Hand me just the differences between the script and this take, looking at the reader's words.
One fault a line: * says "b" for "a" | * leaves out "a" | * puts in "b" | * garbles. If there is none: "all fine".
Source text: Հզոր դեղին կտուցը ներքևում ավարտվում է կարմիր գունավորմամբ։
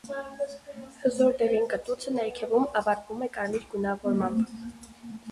all fine